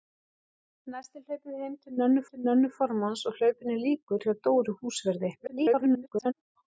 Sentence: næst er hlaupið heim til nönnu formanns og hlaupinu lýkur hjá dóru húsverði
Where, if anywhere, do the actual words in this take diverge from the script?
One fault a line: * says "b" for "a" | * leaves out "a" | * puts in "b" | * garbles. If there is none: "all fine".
* puts in "til nönnu"
* garbles